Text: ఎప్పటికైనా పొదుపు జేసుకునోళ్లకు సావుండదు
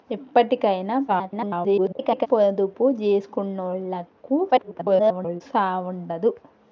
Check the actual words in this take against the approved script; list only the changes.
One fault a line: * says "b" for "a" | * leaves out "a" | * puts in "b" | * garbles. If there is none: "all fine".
* garbles
* garbles